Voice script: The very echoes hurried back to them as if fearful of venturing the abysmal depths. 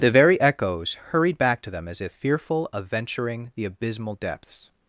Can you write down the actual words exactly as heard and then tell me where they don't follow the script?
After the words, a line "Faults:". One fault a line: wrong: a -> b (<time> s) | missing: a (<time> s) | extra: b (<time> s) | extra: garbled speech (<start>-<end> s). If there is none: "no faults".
The very echoes hurried back to them as if fearful of venturing the abysmal depths.
Faults:
no faults